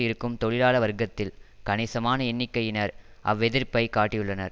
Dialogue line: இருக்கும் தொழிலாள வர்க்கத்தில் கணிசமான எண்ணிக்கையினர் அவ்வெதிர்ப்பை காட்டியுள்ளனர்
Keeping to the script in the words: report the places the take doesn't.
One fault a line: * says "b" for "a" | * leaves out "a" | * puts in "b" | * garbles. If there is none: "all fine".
all fine